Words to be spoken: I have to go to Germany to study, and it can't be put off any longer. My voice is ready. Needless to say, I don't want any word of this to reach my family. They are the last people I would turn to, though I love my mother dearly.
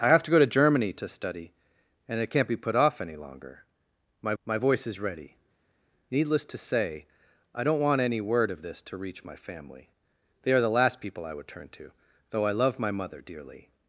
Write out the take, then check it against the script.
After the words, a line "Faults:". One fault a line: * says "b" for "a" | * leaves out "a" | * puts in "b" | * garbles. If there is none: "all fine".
I have to go to Germany to study, and it can't be put off any longer. My my voice is ready. Needless to say, I don't want any word of this to reach my family. They are the last people I would turn to, though I love my mother dearly.
Faults:
* puts in "my"